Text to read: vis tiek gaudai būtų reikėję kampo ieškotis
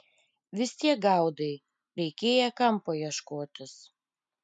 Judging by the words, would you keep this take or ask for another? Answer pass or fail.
fail